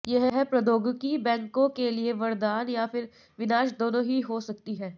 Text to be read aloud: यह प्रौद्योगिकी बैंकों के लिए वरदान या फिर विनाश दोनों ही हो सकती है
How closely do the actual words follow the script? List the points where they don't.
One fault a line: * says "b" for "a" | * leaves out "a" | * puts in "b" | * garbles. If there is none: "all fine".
all fine